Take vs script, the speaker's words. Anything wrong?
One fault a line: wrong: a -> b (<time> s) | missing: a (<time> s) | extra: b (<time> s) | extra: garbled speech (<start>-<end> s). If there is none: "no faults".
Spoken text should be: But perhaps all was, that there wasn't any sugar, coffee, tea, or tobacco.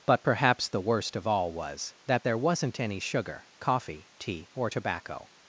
extra: the worst of (0.7 s)